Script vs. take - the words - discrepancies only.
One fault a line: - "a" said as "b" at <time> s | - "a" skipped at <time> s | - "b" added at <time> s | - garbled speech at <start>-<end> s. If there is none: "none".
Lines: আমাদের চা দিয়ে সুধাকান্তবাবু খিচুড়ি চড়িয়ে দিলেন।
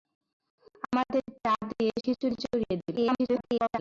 - "সুধাকান্তবাবু" skipped at 1.9 s
- garbled speech at 3.0-3.8 s